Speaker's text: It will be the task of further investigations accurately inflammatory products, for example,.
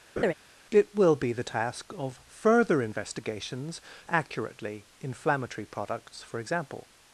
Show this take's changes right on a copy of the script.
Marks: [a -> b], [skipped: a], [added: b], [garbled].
It will be the task of further investigations accurately inflammatory products, for example,.